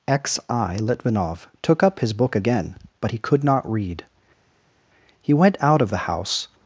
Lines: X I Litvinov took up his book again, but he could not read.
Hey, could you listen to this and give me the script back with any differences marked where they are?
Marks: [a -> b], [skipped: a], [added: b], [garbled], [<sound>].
X I Litvinov took up his book again, but he could not read. [added: He went out of the house]